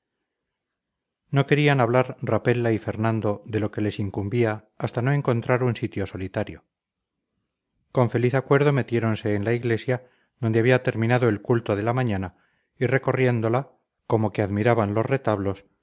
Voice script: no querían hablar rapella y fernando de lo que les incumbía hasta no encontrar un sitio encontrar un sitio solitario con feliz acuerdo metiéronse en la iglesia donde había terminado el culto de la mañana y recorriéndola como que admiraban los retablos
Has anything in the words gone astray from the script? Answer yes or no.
yes